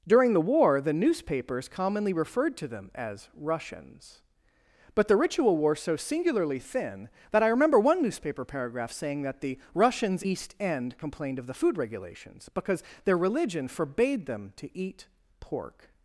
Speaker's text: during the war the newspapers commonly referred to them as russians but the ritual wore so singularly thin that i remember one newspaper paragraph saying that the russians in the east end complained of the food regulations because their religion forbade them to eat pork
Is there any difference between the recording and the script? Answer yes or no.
yes